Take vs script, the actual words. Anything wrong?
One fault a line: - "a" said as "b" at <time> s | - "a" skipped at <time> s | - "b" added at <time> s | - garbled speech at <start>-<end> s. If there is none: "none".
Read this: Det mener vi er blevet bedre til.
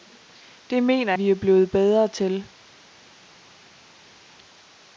none